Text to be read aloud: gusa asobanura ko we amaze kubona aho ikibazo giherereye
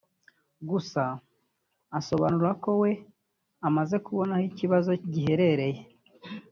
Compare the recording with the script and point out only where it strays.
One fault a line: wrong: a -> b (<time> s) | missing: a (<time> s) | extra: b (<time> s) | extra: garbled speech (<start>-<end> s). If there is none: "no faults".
no faults